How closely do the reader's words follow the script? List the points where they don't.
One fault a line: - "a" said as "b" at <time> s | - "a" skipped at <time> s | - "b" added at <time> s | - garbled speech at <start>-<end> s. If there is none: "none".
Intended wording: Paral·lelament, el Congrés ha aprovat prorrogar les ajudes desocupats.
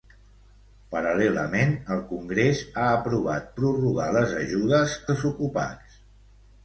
none